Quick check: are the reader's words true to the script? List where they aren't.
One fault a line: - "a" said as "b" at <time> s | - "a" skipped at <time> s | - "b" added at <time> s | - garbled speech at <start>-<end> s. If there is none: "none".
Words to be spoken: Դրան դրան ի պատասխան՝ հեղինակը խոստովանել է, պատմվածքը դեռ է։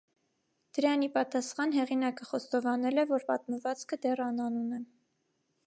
- "դրան" skipped at 1.0 s
- "որ" added at 3.1 s
- "անանուն" added at 4.3 s